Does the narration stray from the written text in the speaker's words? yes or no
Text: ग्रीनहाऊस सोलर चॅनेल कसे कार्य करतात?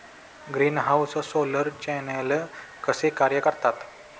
no